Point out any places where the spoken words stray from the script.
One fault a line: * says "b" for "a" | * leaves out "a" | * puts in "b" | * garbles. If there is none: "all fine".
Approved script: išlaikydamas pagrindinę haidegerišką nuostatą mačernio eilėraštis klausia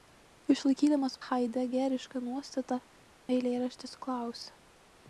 * leaves out "pagrindinę"
* leaves out "mačernio"